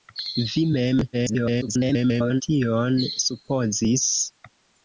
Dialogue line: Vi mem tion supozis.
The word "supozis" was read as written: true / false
true